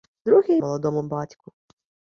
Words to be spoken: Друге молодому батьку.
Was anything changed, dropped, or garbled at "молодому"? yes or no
no